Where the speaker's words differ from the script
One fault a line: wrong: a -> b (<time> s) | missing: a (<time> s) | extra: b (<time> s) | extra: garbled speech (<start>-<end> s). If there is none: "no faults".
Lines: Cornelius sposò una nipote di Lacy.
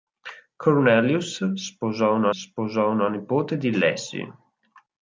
extra: sposò una (2.3 s)